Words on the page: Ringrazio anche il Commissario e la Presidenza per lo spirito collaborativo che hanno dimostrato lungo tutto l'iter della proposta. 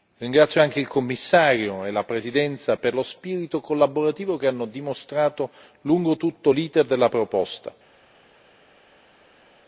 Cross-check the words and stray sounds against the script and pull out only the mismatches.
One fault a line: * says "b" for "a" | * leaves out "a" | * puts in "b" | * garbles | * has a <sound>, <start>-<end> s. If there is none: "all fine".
all fine